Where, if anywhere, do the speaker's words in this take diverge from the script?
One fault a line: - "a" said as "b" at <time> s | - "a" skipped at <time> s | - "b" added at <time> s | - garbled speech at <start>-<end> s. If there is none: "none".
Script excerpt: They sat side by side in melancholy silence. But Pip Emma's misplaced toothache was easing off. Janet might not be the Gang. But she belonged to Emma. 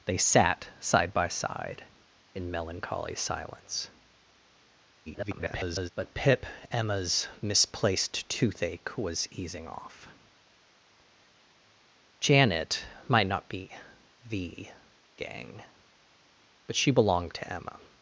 - garbled speech at 5.1-5.9 s